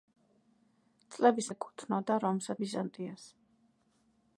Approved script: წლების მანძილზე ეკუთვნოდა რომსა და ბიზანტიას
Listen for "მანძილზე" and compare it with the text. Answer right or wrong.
wrong